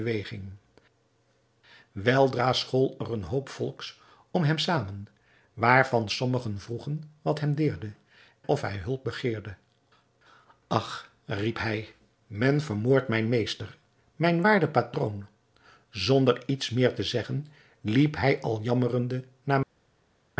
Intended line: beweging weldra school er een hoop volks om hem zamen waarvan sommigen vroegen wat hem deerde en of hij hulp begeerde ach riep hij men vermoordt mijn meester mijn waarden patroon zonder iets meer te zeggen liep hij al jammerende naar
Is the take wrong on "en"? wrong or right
wrong